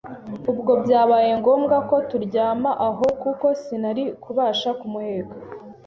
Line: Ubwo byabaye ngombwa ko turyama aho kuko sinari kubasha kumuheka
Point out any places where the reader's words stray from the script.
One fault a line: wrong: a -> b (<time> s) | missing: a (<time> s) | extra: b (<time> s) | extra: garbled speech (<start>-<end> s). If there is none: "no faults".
no faults